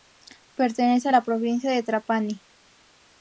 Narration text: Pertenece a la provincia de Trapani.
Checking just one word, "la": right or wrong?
right